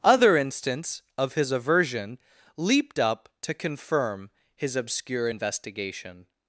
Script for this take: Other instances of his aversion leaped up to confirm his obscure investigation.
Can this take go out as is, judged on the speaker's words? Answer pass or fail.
fail